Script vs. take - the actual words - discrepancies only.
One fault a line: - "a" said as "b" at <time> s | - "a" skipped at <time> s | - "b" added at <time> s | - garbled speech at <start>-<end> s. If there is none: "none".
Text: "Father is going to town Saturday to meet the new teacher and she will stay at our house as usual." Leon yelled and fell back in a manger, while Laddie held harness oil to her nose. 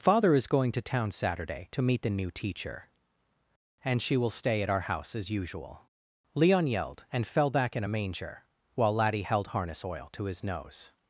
- "her" said as "his" at 10.3 s